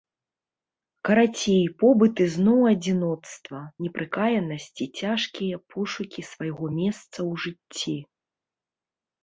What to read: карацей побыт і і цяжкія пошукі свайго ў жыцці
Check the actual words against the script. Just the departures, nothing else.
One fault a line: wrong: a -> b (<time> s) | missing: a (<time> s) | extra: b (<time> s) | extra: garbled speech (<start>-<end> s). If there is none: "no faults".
extra: зноў адзіноцтва непрыкаянасць (2.3 s)
extra: месца (6.8 s)